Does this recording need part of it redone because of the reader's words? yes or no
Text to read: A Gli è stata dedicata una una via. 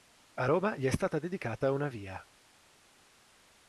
yes